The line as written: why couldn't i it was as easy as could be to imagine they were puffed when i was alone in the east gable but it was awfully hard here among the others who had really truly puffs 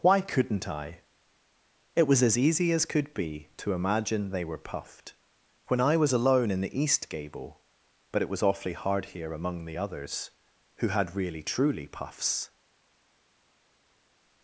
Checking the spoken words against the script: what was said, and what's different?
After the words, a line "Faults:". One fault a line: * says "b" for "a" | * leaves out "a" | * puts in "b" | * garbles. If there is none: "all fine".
why couldn't i it was as easy as could be to imagine they were puffed when i was alone in the east gable but it was awfully hard here among the others who had really truly puffs
Faults:
all fine